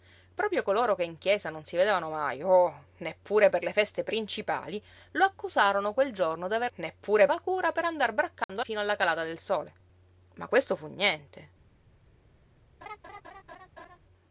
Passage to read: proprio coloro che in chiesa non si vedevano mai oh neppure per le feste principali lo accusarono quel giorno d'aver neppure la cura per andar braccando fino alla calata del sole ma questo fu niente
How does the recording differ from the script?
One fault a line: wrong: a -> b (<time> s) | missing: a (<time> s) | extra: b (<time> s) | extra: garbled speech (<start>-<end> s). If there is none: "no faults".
no faults